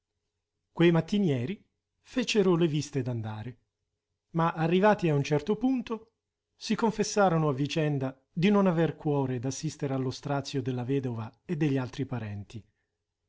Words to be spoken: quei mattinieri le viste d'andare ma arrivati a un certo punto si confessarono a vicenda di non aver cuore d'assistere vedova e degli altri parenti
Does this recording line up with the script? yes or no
no